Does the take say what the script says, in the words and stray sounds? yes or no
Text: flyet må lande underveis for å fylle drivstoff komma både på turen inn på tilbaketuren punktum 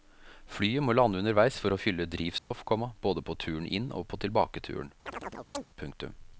no